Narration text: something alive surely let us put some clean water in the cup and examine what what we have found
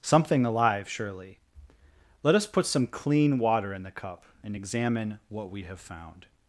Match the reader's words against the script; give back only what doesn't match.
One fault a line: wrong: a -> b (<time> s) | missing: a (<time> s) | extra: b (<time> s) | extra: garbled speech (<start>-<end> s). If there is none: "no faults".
missing: what (5.5 s)